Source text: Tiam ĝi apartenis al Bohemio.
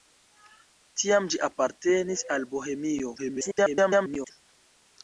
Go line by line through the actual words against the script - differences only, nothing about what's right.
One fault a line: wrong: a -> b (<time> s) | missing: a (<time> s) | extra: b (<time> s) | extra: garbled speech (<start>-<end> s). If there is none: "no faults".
extra: garbled speech (3.2-4.3 s)